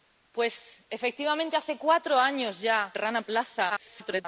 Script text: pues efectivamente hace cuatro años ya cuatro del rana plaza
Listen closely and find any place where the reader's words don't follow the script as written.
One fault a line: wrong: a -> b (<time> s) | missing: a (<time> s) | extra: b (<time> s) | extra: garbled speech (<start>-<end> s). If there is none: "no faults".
missing: cuatro del (3.0 s)
extra: garbled speech (3.7-4.3 s)